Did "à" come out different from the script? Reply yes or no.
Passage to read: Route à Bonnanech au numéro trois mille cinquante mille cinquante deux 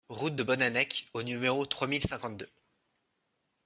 yes